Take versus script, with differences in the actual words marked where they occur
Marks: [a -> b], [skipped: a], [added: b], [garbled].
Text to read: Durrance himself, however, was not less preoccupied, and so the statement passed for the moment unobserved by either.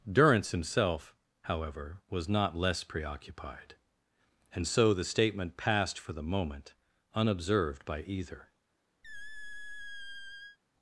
Durrance himself, however, was not less preoccupied, and so the statement passed for the moment unobserved by either.